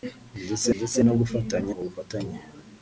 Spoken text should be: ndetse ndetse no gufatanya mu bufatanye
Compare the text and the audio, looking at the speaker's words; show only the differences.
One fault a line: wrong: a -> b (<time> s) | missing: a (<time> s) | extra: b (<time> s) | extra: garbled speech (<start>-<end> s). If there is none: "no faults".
no faults